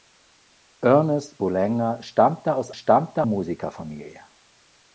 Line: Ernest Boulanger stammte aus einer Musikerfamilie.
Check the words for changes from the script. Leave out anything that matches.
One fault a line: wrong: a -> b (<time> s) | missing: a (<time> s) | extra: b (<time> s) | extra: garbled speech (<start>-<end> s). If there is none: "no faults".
wrong: einer -> stammte (2.7 s)